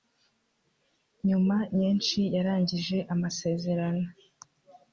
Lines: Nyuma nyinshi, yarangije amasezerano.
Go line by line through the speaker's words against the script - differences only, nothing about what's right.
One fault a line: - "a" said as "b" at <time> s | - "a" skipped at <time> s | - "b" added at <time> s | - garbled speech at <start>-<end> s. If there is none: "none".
none